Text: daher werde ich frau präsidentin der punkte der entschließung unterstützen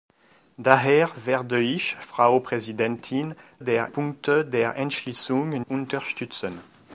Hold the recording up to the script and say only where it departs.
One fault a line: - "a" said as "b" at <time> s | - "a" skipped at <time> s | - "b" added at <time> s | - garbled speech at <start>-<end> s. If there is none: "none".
none